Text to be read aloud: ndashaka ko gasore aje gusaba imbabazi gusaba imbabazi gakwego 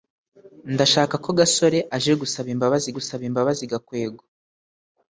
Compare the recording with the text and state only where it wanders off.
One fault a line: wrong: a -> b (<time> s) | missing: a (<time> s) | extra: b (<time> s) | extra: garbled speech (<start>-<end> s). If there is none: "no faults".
no faults